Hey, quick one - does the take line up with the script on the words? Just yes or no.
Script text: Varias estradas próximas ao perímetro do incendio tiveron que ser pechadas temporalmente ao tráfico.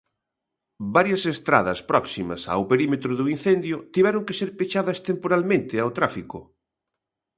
yes